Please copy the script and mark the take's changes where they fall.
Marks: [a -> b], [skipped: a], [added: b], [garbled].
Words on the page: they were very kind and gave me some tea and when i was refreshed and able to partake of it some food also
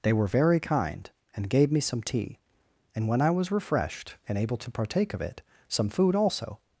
they were very kind and gave me some tea and when i was refreshed and able to partake of it some food also